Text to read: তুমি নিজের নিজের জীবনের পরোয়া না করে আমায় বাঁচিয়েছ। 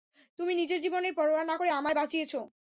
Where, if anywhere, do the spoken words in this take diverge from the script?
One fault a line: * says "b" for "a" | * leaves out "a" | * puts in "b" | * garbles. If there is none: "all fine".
* leaves out "নিজের"